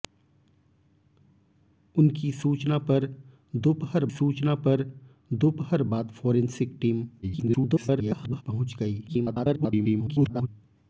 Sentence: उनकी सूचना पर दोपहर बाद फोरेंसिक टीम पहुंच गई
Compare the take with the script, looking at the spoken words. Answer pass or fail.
fail